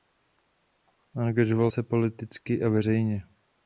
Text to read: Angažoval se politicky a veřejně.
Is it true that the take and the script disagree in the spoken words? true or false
false